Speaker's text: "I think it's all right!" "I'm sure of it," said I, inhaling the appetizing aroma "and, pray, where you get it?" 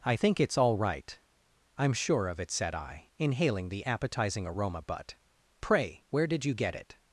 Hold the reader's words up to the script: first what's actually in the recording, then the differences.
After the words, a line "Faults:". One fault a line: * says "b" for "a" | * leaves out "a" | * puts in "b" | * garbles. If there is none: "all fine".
"I think it's all right!" "I'm sure of it," said I, inhaling the appetizing aroma "but, pray, where did you get it?"
Faults:
* says "but" for "and"
* puts in "did"